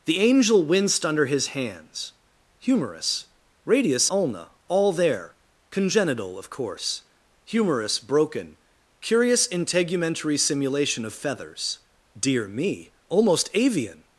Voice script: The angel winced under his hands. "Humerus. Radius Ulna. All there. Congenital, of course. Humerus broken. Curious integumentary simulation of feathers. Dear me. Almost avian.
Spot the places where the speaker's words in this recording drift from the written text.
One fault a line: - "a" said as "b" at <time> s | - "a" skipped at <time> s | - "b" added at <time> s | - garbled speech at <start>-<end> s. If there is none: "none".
none